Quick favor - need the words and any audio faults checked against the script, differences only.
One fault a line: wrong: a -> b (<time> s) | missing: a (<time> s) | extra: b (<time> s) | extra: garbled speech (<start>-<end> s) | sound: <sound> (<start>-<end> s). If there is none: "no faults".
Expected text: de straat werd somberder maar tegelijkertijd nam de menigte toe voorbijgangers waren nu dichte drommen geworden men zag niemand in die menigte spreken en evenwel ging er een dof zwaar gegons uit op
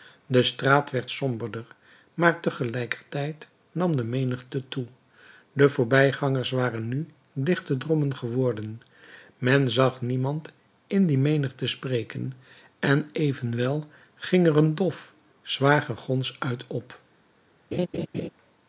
extra: de (5.5 s)
sound: laugh (17.7-18.3 s)